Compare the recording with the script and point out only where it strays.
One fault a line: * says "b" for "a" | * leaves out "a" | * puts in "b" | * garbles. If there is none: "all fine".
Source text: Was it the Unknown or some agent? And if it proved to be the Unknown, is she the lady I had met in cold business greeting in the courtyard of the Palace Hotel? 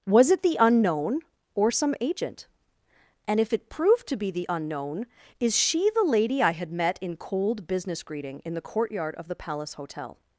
all fine